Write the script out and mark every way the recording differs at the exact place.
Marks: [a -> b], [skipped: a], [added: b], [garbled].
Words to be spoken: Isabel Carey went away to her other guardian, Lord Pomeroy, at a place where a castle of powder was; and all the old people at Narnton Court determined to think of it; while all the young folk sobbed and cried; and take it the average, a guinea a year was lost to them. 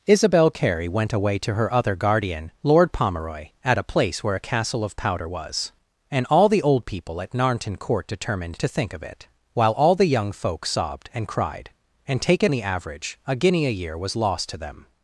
Isabel Carey went away to her other guardian, Lord Pomeroy, at a place where a castle of powder was; and all the old people at Narnton Court determined to think of it; while all the young folk sobbed and cried; and take it the average, a guinea a year was lost to them.